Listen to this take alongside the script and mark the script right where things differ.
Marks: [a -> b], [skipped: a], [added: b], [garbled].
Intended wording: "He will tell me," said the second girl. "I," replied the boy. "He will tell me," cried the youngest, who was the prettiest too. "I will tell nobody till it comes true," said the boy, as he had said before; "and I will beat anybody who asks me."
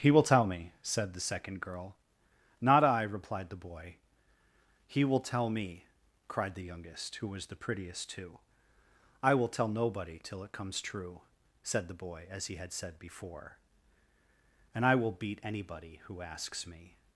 "He will tell me," said the second girl. [added: Not] "I," replied the boy. "He will tell me," cried the youngest, who was the prettiest too. "I will tell nobody till it comes true," said the boy, as he had said before; "and I will beat anybody who asks me."